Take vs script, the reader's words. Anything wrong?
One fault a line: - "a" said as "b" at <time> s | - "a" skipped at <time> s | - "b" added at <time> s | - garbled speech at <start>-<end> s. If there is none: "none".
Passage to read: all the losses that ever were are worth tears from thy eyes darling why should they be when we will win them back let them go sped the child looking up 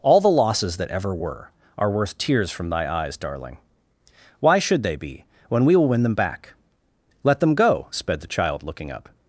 none